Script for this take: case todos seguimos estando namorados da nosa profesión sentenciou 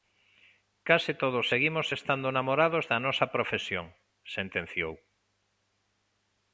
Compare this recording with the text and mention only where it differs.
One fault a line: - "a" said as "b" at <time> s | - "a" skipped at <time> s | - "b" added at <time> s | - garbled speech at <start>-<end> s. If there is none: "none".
none